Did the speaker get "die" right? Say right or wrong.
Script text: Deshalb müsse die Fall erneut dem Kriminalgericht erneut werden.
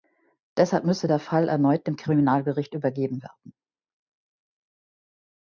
wrong